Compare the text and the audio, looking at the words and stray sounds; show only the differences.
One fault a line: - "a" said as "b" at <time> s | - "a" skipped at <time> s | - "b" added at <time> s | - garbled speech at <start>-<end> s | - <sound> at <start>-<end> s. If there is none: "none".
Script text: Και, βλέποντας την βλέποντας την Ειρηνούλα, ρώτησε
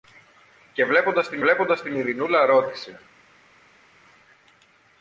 none